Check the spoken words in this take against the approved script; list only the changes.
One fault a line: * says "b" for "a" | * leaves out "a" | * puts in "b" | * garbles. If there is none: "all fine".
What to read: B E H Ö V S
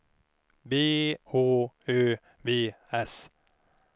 * leaves out "E"